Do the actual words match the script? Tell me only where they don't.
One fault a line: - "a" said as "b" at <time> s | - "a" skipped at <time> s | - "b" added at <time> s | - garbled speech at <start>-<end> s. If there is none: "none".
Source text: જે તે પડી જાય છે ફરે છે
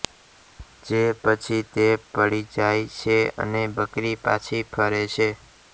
- "પછી" added at 1.2 s
- "અને બકરી પાછી" added at 3.4 s